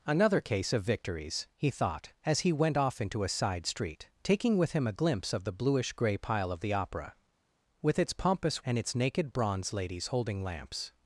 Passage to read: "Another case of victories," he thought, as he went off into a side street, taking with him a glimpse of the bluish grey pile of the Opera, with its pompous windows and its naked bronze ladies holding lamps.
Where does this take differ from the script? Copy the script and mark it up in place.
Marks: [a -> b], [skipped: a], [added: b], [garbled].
"Another case of victories," he thought, as he went off into a side street, taking with him a glimpse of the bluish grey pile of the Opera, with its pompous [skipped: windows] and its naked bronze ladies holding lamps.